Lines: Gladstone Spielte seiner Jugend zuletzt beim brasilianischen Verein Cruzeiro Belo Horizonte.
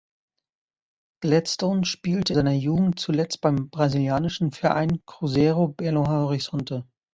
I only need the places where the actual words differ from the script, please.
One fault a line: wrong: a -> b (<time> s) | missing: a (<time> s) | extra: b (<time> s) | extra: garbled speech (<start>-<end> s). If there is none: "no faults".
no faults